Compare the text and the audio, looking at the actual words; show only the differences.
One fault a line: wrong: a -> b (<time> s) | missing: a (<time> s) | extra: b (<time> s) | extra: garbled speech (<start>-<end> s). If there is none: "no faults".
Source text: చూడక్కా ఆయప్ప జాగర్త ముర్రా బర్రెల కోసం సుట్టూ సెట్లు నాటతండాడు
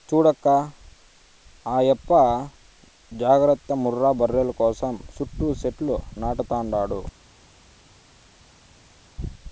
no faults